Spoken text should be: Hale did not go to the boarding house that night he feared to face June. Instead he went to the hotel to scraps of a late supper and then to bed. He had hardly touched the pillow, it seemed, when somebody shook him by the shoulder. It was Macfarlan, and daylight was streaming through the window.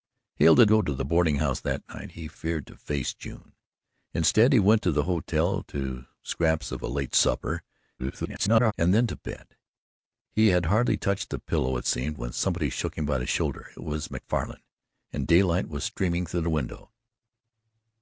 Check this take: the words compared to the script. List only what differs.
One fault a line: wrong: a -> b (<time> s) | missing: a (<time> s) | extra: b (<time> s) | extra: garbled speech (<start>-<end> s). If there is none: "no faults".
missing: not (0.7 s)
extra: garbled speech (8.0-8.7 s)